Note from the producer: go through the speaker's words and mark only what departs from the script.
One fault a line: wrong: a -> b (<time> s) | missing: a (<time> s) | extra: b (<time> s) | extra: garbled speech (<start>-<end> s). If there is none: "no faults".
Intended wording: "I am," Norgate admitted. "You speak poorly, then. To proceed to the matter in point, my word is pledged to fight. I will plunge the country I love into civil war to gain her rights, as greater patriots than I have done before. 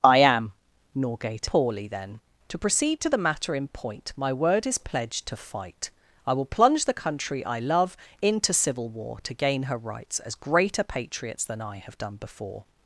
missing: admitted You speak (1.5 s)